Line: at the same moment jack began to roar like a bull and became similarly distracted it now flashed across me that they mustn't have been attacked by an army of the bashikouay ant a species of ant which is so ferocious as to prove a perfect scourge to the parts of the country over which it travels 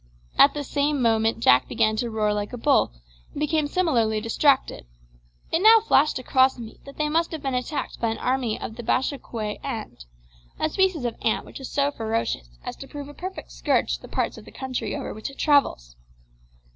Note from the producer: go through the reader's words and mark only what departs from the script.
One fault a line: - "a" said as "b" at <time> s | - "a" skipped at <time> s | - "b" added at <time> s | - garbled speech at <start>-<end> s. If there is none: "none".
- "mustn't" said as "must" at 7.1 s